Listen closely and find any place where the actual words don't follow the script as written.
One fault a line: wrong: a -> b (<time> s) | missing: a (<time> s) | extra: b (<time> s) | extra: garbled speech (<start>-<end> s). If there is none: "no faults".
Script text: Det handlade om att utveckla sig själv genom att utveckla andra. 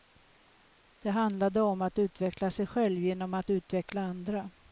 no faults